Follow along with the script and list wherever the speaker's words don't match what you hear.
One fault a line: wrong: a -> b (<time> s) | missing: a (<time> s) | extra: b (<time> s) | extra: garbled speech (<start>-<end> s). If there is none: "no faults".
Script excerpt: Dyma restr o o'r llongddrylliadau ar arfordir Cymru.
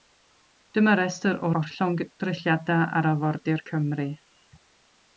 no faults